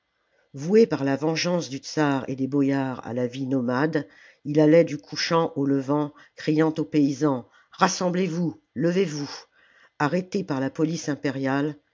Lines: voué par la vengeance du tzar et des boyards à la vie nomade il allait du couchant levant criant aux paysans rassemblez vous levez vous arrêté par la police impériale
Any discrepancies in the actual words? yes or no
yes